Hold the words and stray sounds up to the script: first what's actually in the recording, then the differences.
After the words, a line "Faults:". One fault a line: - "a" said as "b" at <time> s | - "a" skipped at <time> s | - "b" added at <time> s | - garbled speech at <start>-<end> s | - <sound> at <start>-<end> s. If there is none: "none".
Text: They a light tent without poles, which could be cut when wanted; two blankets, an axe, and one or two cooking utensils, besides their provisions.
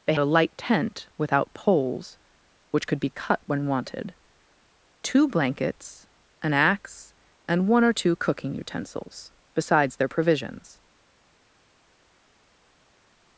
They a light tent without poles, which could be cut when wanted; two blankets, an axe, and one or two cooking utensils, besides their provisions.
Faults:
none